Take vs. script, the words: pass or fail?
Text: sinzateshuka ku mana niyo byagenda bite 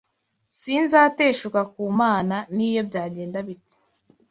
pass